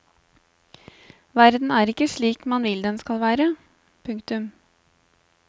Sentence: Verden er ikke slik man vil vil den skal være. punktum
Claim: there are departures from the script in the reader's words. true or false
true